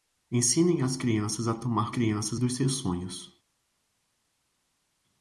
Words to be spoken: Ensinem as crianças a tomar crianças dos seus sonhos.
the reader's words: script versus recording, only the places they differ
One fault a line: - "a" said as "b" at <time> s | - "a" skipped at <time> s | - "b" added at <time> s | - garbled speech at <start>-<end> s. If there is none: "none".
none